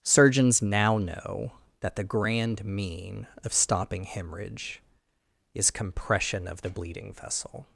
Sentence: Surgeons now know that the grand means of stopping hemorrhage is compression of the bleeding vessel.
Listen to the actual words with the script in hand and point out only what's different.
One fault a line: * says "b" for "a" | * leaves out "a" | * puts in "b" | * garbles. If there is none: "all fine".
* says "mean" for "means"